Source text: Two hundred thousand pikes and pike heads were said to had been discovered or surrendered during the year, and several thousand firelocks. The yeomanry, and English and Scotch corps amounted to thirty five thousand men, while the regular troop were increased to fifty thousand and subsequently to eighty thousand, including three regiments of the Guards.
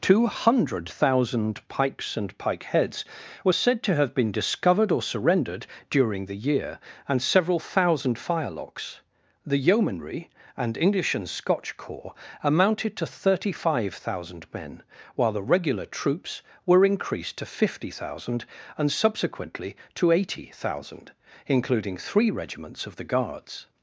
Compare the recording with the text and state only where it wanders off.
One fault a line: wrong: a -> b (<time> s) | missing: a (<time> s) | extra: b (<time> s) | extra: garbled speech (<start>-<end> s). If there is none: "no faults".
wrong: had -> have (3.9 s)
wrong: troop -> troops (15.9 s)